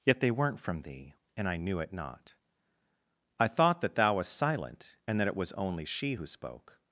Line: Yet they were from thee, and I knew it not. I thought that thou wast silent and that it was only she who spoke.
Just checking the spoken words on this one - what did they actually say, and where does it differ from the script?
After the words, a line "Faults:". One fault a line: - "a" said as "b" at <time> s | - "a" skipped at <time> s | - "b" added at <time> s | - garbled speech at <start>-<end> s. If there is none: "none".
Yet they weren't from thee, and I knew it not. I thought that thou wast silent and that it was only she who spoke.
Faults:
- "were" said as "weren't" at 0.3 s